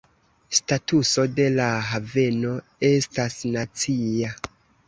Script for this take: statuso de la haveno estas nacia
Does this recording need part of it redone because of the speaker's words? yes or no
no